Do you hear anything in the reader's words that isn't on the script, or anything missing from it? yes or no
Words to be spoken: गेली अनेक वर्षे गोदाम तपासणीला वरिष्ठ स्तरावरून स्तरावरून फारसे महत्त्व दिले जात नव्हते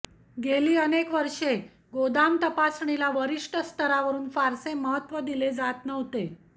yes